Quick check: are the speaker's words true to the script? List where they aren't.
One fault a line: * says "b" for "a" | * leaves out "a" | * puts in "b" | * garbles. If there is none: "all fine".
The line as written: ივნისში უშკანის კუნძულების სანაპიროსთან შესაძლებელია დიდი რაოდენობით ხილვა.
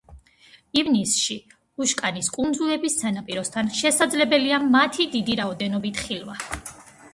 * puts in "მათი"